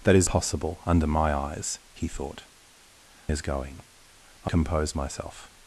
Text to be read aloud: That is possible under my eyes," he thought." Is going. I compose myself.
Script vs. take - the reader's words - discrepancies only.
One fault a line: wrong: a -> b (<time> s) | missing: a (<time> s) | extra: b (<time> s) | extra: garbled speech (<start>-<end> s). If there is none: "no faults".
no faults